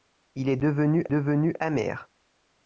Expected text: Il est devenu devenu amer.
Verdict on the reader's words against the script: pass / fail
pass